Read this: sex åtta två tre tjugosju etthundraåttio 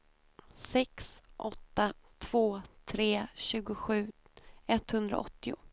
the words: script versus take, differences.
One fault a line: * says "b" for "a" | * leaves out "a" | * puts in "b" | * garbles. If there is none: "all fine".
all fine